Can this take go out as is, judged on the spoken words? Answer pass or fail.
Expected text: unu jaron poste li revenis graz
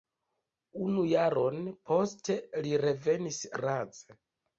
pass